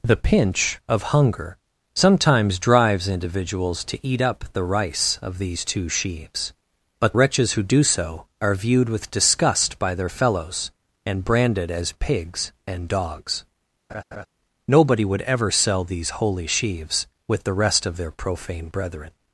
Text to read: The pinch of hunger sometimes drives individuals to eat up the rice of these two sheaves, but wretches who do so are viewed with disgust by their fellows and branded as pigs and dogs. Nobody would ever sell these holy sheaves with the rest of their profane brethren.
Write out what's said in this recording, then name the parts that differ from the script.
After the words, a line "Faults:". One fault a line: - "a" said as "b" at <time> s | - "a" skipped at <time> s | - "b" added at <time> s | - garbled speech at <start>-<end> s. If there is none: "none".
The pinch of hunger sometimes drives individuals to eat up the rice of these two sheaves, but wretches who do so are viewed with disgust by their fellows and branded as pigs and dogs. Nobody would ever sell these holy sheaves with the rest of their profane brethren.
Faults:
none